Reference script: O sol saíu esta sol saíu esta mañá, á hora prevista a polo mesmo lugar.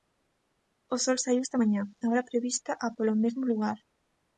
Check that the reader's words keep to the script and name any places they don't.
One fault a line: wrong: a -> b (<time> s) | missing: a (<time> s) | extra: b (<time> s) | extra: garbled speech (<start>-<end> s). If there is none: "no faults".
missing: sol saíu esta (1.6 s)